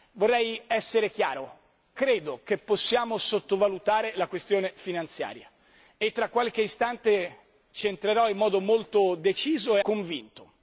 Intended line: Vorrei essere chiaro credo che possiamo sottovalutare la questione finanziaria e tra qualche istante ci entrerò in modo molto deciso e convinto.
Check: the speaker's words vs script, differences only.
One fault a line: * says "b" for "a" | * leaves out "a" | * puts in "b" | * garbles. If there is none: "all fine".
all fine